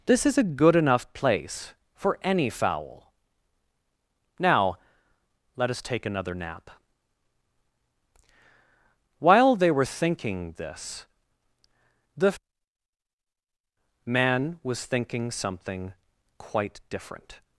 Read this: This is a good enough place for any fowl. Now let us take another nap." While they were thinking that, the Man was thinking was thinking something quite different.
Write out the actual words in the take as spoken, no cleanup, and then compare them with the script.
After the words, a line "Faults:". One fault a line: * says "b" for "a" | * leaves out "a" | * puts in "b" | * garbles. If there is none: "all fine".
This is a good enough place for any fowl. Now let us take another nap." While they were thinking this, the Man was thinking something quite different.
Faults:
* says "this" for "that"
* leaves out "was thinking"